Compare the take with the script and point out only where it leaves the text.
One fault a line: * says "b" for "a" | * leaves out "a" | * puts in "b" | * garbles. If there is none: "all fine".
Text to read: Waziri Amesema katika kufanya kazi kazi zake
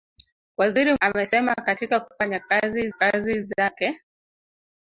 all fine